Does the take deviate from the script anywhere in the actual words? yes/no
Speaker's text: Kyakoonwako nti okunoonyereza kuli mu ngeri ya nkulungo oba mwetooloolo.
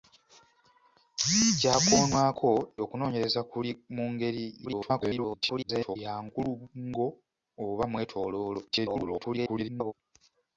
yes